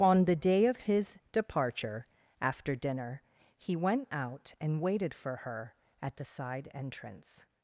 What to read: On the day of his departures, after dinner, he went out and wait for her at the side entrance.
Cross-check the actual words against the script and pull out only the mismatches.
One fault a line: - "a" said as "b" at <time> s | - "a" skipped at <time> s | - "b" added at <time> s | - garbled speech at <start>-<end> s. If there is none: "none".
- "departures" said as "departure" at 1.3 s
- "wait" said as "waited" at 4.8 s